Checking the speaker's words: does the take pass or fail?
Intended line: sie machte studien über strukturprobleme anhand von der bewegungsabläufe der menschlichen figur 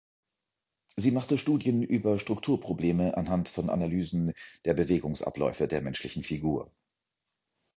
fail